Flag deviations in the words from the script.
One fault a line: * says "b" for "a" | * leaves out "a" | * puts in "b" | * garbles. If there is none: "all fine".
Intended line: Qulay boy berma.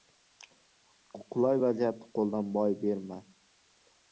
* puts in "vaziyatni qo‘ldan"